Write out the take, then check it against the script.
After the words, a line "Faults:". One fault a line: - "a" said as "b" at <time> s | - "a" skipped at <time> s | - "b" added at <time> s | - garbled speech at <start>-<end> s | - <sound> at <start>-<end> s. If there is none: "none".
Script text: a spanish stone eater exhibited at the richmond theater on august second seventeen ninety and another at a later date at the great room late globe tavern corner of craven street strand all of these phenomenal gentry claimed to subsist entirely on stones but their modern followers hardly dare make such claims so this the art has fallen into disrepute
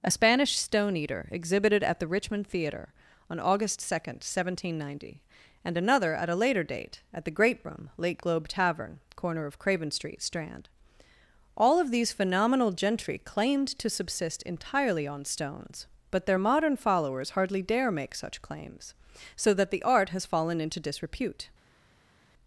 a spanish stone eater exhibited at the richmond theater on august second seventeen ninety and another at a later date at the great room late globe tavern corner of craven street strand all of these phenomenal gentry claimed to subsist entirely on stones but their modern followers hardly dare make such claims so that the art has fallen into disrepute
Faults:
- "this" said as "that" at 19.5 s